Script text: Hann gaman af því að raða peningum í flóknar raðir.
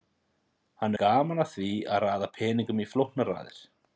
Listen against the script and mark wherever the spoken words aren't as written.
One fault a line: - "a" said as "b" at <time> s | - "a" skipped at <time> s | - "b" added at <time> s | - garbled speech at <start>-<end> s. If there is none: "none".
none